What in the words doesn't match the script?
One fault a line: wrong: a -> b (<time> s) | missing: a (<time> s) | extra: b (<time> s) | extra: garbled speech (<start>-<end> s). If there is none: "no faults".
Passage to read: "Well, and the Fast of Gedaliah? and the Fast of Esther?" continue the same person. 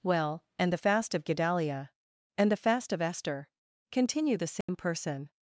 no faults